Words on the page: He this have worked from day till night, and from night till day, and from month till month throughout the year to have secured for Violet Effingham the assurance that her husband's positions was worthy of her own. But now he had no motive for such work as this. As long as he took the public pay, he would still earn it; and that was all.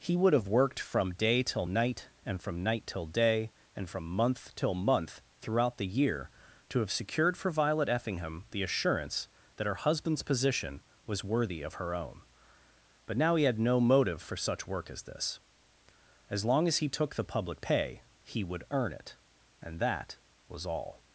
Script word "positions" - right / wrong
wrong